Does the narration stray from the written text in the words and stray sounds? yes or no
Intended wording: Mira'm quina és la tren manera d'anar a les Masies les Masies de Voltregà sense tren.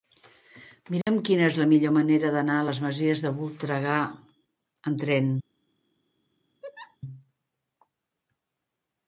yes